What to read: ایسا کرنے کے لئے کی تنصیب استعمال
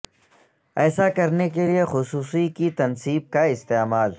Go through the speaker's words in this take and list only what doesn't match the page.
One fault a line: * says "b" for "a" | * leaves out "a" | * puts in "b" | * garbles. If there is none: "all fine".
* puts in "خصوصی"
* puts in "کا"